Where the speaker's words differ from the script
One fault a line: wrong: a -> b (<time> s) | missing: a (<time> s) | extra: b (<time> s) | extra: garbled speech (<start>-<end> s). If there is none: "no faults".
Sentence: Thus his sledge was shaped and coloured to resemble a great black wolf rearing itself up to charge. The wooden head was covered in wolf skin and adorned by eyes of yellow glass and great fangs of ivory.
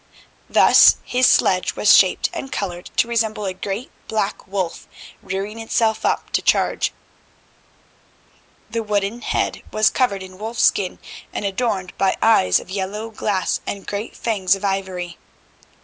no faults